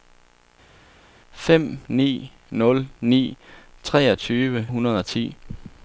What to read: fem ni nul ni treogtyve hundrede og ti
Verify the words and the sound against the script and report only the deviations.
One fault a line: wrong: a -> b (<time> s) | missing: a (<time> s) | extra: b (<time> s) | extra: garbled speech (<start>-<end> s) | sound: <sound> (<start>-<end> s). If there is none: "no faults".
no faults